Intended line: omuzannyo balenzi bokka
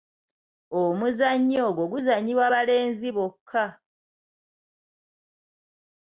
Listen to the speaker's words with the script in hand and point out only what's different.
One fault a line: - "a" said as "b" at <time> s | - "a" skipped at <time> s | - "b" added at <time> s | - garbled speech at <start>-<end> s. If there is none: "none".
- "ogwo guzannyibwa" added at 1.7 s